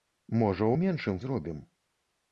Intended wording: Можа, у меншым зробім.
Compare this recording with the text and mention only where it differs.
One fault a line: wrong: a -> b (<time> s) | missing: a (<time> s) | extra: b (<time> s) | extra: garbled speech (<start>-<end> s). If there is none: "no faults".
no faults